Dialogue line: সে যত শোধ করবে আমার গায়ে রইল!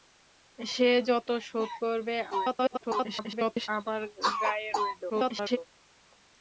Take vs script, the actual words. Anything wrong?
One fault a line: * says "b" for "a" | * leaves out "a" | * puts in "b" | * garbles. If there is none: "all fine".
* garbles
* garbles